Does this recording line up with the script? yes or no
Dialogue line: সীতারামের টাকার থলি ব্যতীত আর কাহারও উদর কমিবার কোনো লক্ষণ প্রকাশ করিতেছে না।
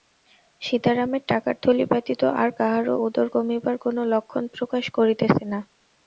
yes